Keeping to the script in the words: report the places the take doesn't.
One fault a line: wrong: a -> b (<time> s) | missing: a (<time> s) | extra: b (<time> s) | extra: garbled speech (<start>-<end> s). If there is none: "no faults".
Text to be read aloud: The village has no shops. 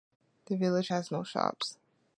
no faults